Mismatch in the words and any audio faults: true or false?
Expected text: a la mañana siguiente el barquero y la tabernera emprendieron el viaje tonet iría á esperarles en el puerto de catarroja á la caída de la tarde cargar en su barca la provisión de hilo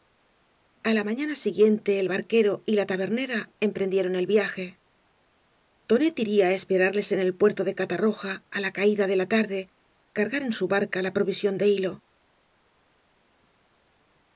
false